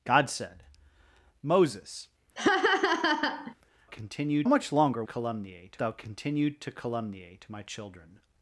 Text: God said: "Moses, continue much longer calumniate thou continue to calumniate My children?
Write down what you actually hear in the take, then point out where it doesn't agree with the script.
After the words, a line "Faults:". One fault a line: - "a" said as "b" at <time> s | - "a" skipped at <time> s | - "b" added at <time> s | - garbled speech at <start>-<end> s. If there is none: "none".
God said: "Moses, continue much longer calumniate thou continue to calumniate My children?
Faults:
none